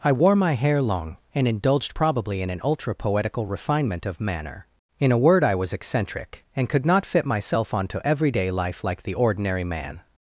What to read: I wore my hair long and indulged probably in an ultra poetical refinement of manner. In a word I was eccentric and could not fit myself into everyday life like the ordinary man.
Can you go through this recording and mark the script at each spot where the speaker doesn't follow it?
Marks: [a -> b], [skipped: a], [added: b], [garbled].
I wore my hair long and indulged probably in an ultra poetical refinement of manner. In a word I was eccentric and could not fit myself [into -> onto] everyday life like the ordinary man.